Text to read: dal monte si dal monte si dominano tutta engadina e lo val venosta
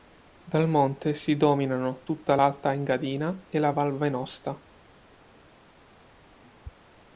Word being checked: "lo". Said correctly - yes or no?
no